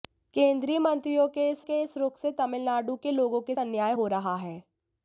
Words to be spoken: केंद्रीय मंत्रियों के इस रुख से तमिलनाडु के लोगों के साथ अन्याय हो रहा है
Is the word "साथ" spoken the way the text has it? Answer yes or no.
no